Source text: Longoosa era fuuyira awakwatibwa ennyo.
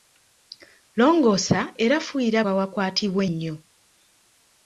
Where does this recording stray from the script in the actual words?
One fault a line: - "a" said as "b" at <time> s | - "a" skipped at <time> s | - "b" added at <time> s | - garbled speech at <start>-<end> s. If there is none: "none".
none